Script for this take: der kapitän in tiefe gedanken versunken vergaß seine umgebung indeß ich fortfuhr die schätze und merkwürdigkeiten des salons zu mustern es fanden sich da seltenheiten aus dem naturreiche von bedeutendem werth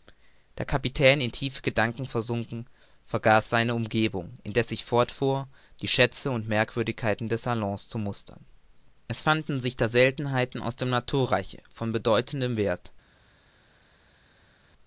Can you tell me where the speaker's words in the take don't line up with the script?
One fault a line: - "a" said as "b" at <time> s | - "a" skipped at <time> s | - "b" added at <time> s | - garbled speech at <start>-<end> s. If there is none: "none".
none